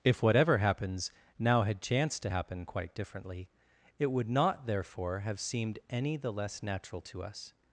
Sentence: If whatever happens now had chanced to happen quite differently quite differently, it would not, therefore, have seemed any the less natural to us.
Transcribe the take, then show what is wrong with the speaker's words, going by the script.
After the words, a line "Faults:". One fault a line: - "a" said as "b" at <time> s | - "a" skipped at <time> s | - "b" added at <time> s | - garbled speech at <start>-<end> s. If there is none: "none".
If whatever happens now had chanced to happen quite differently, it would not, therefore, have seemed any the less natural to us.
Faults:
- "quite differently" skipped at 3.5 s